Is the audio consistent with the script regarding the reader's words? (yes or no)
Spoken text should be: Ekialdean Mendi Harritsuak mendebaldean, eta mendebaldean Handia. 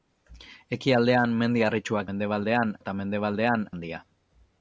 yes